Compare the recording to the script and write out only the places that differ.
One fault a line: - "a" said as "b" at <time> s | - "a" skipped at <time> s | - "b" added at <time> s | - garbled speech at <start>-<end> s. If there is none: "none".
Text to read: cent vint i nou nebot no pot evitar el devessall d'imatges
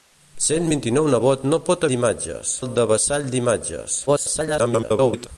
- "evitar" said as "d'imatges" at 1.9 s
- garbled speech at 4.1-5.3 s